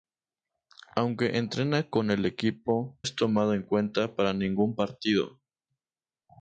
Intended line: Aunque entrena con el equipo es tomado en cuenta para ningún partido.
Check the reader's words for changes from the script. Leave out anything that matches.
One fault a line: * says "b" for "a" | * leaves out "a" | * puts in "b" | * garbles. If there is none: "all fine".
all fine